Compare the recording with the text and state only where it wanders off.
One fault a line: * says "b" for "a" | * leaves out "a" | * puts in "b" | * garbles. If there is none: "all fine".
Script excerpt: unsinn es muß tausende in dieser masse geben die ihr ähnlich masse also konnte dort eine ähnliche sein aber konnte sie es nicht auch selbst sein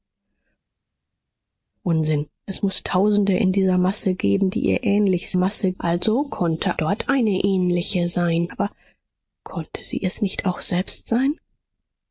all fine